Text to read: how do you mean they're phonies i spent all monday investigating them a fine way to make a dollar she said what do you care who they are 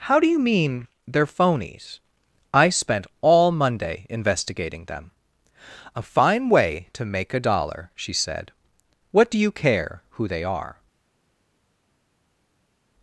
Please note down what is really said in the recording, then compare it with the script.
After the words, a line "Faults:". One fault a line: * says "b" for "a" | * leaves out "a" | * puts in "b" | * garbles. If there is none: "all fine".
how do you mean they're phonies i spent all monday investigating them a fine way to make a dollar she said what do you care who they are
Faults:
all fine